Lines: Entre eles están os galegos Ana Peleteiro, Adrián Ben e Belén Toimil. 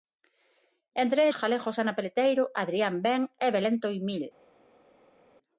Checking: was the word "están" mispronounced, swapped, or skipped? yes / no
yes